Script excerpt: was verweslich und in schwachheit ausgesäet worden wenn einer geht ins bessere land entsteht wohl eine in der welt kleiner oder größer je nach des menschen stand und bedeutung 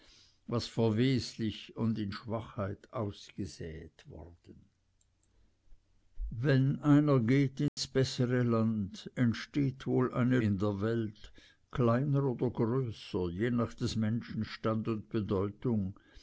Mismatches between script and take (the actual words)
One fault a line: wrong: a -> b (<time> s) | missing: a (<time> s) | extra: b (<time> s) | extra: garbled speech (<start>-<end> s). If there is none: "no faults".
no faults